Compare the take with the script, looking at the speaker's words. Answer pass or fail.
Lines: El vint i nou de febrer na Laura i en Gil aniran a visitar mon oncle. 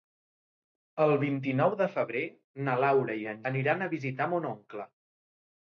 fail